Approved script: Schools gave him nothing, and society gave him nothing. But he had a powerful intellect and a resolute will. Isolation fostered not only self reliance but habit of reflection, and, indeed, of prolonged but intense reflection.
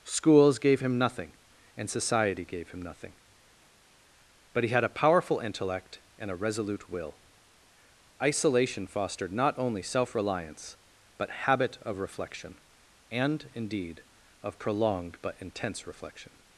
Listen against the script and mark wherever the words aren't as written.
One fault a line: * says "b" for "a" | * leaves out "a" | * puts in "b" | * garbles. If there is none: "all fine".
all fine